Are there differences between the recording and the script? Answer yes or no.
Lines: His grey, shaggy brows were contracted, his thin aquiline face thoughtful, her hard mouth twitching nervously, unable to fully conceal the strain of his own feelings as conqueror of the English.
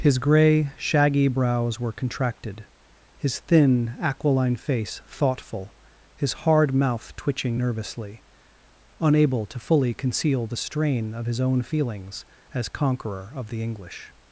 yes